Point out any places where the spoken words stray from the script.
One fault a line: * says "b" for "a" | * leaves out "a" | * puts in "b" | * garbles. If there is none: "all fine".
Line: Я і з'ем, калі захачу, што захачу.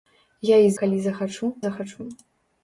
* leaves out "з'ем"
* leaves out "што"